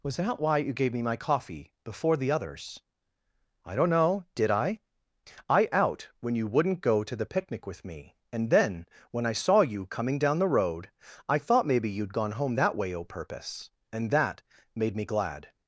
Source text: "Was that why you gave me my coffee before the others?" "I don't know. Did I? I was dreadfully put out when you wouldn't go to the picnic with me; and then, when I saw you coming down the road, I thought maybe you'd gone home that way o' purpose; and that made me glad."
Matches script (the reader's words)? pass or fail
fail